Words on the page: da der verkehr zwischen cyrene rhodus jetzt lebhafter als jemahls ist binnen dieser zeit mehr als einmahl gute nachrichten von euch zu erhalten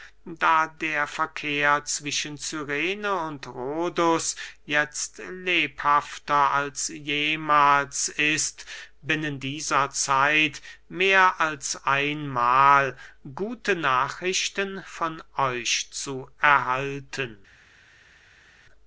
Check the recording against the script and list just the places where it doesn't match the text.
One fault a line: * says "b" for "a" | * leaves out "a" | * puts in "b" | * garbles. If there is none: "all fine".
* puts in "und"